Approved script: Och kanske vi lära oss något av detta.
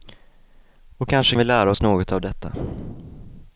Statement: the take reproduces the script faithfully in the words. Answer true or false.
true